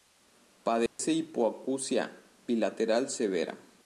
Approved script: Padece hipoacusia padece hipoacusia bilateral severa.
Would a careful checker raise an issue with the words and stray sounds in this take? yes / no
yes